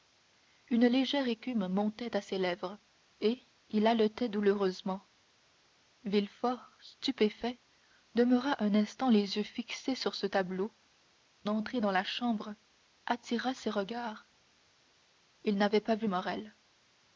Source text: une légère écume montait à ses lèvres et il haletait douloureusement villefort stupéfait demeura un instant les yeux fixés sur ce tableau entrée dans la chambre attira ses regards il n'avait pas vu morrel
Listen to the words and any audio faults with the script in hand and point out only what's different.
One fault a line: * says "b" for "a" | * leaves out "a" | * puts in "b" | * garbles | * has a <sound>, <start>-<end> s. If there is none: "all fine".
all fine